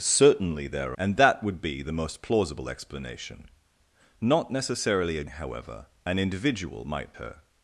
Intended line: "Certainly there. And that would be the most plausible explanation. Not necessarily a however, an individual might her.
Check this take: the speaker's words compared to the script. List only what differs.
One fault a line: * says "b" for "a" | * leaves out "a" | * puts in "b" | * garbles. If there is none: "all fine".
all fine